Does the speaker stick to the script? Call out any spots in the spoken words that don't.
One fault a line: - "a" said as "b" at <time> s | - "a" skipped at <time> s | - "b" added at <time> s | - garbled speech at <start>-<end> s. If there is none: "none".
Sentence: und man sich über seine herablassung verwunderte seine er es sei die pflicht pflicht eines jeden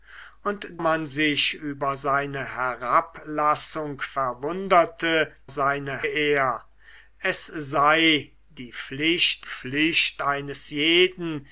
none